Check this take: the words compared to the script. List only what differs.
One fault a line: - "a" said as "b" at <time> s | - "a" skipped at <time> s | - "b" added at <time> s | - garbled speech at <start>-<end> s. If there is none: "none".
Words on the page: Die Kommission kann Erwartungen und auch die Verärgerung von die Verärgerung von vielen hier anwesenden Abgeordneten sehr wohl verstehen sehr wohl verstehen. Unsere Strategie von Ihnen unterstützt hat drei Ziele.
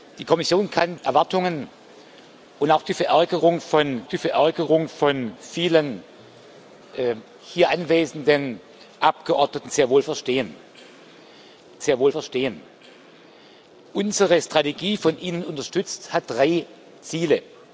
none